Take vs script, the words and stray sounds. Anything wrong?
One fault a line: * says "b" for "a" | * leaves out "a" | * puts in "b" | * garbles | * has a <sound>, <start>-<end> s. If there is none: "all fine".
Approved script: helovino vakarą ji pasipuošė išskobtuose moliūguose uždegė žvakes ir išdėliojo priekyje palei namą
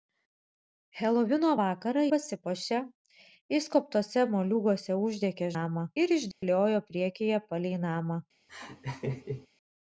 * leaves out "ji"
* says "namą" for "žvakes"
* has a dropout, 6.3-6.4 s
* has a laugh, 8.5-9.5 s